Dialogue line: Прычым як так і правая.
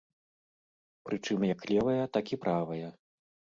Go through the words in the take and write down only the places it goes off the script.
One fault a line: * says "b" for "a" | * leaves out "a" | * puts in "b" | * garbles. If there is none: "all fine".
* puts in "левая"